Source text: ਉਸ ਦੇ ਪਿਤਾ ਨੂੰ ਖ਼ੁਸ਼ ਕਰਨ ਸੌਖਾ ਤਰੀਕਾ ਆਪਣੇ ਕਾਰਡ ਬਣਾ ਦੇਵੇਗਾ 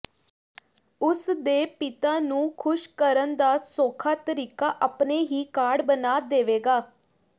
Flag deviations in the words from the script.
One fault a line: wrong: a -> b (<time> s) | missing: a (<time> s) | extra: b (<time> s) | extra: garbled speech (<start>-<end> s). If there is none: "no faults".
extra: ਦਾ (3.4 s)
extra: ਹੀ (5.2 s)